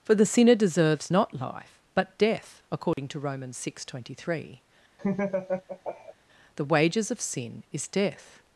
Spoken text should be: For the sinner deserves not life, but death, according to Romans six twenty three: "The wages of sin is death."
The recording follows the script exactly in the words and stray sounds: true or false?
false